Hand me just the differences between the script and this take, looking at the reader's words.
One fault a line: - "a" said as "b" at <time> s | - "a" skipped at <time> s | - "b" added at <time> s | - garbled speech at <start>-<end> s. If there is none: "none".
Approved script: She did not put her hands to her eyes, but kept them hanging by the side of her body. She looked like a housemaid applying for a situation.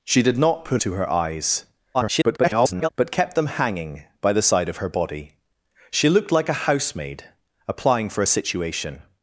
- "her hands" skipped at 0.8 s
- garbled speech at 1.9-2.9 s